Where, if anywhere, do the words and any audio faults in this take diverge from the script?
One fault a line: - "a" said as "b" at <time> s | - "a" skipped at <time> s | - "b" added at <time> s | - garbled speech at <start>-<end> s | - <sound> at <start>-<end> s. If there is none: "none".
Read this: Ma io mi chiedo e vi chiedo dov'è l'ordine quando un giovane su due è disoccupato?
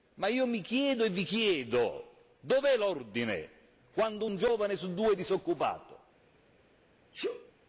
- sneeze at 7.1-7.5 s